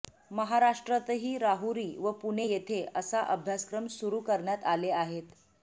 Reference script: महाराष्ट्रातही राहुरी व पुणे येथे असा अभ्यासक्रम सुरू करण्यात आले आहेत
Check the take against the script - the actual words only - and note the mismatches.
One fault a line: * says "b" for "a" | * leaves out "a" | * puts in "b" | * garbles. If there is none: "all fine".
all fine